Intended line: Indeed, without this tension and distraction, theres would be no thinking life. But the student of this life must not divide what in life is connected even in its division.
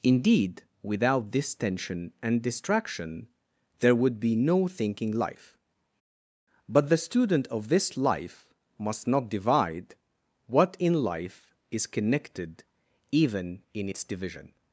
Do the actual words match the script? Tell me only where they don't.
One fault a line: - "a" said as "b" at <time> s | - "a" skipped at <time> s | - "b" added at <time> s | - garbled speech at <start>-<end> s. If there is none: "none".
- "theres" said as "there" at 3.8 s